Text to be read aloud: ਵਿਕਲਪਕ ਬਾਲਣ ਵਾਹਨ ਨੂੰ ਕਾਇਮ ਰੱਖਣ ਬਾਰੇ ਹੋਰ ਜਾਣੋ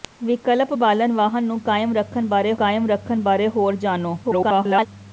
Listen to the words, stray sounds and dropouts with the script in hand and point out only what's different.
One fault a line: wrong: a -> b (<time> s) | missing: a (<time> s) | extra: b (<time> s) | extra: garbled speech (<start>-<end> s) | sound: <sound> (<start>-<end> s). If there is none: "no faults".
extra: ਕਾਇਮ ਰੱਖਣ ਬਾਰੇ (2.5 s)
extra: garbled speech (4.2-4.9 s)